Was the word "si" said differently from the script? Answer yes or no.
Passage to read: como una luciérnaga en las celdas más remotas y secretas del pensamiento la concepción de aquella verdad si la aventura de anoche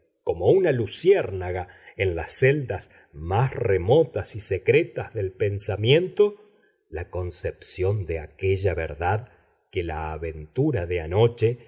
yes